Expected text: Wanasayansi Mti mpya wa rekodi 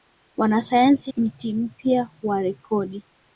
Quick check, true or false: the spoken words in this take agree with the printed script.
true